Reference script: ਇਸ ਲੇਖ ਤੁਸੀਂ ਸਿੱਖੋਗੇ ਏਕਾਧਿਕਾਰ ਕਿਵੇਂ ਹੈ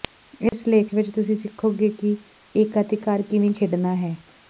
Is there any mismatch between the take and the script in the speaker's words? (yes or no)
yes